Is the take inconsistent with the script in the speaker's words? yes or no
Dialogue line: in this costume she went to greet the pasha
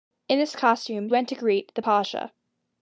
yes